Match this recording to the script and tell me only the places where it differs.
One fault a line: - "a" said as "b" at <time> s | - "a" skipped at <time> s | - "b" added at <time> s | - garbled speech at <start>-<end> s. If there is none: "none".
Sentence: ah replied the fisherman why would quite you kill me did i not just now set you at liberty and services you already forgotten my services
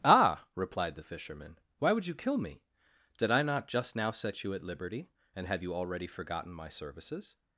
- "quite" skipped at 2.1 s
- "services" said as "have" at 5.5 s